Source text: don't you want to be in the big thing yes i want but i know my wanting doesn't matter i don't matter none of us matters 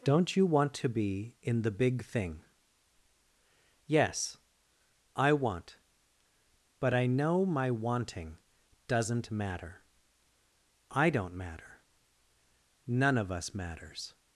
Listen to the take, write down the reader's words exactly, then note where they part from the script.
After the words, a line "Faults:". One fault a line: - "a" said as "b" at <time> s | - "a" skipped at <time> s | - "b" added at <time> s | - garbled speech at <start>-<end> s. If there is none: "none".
don't you want to be in the big thing yes i want but i know my wanting doesn't matter i don't matter none of us matters
Faults:
none